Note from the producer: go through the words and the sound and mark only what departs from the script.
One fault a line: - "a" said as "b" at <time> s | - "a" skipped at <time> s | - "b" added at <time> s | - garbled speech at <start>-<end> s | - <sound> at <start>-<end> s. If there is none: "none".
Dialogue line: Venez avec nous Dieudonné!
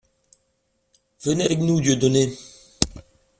none